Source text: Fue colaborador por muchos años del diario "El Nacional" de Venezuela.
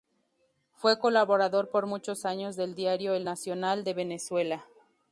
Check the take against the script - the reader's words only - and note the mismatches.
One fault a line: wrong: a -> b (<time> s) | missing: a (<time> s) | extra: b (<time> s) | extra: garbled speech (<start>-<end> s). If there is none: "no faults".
no faults